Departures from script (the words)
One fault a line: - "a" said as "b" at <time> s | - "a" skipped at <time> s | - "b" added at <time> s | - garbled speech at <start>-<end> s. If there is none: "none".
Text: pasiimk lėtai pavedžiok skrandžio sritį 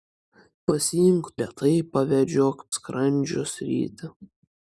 none